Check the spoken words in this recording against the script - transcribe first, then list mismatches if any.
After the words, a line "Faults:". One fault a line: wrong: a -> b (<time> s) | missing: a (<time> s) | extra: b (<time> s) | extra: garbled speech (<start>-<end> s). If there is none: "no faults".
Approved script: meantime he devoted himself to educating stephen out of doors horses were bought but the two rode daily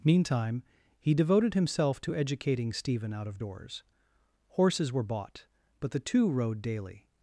meantime he devoted himself to educating stephen out of doors horses were bought but the two rode daily
Faults:
no faults